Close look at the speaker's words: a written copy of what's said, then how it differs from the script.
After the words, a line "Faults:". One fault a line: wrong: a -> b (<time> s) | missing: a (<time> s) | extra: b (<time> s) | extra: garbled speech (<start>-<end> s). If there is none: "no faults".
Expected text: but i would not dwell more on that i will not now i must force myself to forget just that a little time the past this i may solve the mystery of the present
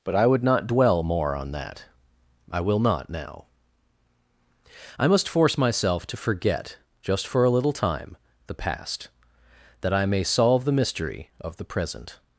but i would not dwell more on that i will not now i must force myself to forget just for a little time the past that i may solve the mystery of the present
Faults:
wrong: that -> for (7.3 s)
wrong: this -> that (9.8 s)